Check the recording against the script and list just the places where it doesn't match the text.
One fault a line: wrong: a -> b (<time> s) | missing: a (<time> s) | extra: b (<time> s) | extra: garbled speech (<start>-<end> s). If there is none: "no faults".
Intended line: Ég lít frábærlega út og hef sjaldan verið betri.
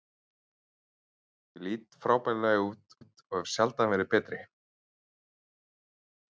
extra: út (3.0 s)